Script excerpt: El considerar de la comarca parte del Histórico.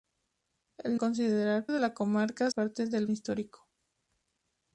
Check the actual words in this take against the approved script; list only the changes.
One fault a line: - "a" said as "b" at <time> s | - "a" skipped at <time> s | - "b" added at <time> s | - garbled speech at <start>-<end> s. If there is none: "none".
none